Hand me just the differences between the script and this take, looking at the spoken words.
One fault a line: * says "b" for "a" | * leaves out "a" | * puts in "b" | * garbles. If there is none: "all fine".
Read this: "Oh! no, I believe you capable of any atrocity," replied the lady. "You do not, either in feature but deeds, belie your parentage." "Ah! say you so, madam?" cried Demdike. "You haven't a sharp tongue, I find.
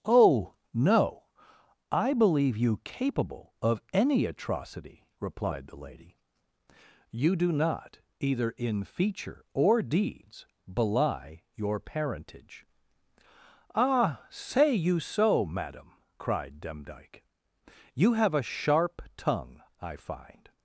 * says "or" for "but"
* says "have" for "haven't"